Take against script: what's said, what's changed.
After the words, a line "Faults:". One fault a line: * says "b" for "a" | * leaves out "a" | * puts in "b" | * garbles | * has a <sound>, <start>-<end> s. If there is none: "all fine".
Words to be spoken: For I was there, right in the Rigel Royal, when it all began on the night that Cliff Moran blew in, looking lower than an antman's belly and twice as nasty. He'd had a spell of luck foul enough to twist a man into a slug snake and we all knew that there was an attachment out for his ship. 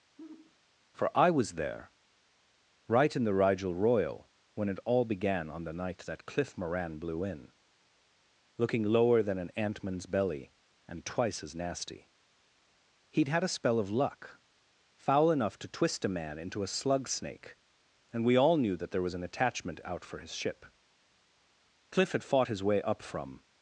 For I was there, right in the Rigel Royal, when it all began on the night that Cliff Moran blew in, looking lower than an antman's belly and twice as nasty. He'd had a spell of luck foul enough to twist a man into a slug snake and we all knew that there was an attachment out for his ship. Cliff had fought his way up from
Faults:
* has a sigh, 0.2-0.6 s
* puts in "Cliff had fought his way up from"